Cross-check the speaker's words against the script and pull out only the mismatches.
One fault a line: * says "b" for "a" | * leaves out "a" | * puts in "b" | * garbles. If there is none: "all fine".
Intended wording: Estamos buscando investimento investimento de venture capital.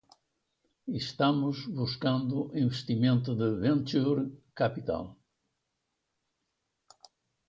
* leaves out "investimento"